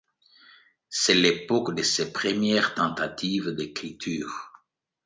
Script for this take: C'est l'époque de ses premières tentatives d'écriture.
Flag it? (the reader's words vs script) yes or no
no